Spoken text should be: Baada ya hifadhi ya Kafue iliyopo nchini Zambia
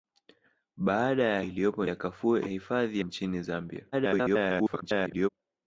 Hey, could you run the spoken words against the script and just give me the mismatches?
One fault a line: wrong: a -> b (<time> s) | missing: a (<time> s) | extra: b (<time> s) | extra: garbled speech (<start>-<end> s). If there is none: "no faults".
wrong: hifadhi -> iliyopo (1.5 s)
wrong: iliyopo -> hifadhi (2.4 s)
extra: garbled speech (3.9-5.3 s)